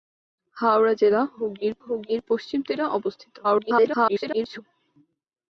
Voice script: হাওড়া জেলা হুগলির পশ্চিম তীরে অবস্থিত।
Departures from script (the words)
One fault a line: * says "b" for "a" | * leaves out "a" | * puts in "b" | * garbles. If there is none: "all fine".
* puts in "হুগলির"
* garbles